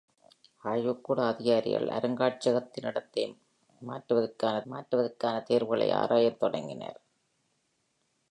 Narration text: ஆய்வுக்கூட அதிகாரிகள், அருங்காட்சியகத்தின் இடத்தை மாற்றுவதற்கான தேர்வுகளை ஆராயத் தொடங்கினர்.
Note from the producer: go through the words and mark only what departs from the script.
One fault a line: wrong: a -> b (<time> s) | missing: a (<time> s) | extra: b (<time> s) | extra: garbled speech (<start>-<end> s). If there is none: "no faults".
extra: மாற்றுவதற்கான (4.6 s)